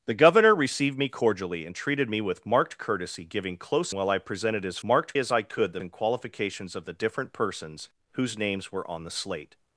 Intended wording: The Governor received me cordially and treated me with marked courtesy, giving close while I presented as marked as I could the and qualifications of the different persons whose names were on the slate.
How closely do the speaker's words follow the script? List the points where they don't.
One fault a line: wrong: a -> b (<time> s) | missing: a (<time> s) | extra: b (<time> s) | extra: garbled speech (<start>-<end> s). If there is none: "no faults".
no faults